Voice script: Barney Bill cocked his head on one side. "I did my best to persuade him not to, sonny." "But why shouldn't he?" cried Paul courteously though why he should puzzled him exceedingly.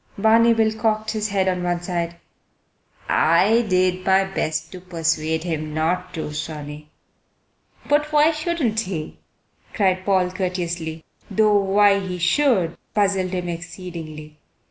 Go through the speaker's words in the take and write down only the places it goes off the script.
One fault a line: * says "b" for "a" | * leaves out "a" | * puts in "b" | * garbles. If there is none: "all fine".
all fine